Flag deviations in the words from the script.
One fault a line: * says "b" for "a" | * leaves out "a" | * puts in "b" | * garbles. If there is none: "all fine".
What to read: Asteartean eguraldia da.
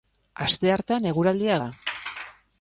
all fine